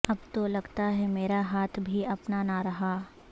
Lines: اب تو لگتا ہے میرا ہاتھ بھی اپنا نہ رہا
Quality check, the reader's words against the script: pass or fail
pass